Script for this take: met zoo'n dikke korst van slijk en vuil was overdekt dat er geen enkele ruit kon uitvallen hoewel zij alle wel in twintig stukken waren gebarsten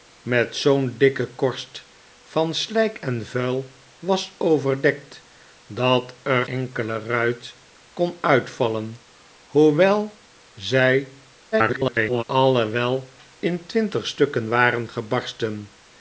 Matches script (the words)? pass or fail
fail